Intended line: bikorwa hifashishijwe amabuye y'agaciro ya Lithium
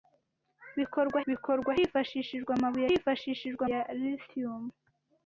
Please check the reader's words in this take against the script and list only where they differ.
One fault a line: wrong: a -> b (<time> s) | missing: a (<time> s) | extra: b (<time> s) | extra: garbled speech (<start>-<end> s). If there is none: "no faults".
extra: bikorwa (1.3 s)
wrong: y'agaciro -> hifashishijwe (2.9 s)